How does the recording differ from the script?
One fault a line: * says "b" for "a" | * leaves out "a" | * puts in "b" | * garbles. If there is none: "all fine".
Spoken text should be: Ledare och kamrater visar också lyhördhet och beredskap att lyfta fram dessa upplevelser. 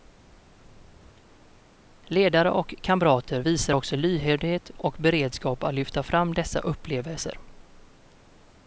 all fine